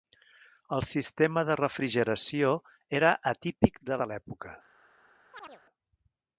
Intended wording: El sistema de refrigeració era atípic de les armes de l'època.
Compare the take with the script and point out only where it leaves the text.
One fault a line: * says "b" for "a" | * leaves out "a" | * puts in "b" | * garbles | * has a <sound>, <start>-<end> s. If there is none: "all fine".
* leaves out "les armes"
* has a chirp, 5.3-5.6 s